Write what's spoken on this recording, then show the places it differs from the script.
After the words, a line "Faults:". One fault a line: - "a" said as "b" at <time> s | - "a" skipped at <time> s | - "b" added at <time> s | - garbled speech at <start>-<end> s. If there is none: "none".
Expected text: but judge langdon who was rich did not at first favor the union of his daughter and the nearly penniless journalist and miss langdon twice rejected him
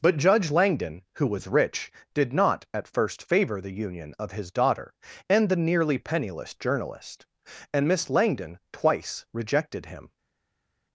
but judge langdon who was rich did not at first favor the union of his daughter and the nearly penniless journalist and miss langdon twice rejected him
Faults:
none